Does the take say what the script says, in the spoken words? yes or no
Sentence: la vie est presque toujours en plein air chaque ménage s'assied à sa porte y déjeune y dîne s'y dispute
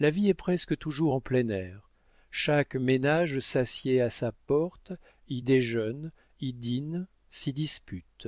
yes